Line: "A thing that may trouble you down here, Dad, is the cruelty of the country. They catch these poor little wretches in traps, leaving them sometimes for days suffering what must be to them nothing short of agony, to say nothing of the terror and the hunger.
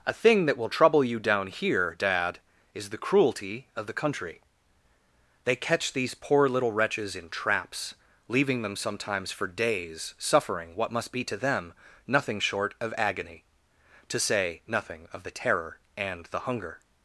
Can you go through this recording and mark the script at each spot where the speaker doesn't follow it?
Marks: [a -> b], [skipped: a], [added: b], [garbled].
"A thing that [may -> will] trouble you down here, Dad, is the cruelty of the country. They catch these poor little wretches in traps, leaving them sometimes for days suffering what must be to them nothing short of agony, to say nothing of the terror and the hunger.